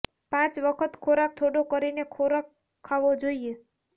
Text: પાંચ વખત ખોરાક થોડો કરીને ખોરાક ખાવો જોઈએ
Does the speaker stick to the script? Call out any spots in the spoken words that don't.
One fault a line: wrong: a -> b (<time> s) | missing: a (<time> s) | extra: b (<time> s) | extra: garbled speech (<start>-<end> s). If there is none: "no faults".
no faults